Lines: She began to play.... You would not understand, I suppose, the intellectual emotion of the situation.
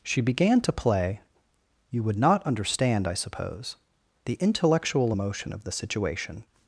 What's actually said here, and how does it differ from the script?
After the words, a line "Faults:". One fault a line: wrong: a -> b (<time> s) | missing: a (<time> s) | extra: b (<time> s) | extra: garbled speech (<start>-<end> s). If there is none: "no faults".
She began to play.... You would not understand, I suppose, the intellectual emotion of the situation.
Faults:
no faults